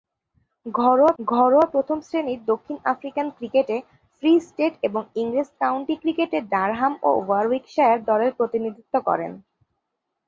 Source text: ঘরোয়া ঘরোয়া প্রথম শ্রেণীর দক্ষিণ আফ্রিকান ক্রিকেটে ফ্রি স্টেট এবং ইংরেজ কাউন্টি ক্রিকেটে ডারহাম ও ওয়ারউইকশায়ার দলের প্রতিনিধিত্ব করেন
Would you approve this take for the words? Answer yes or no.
yes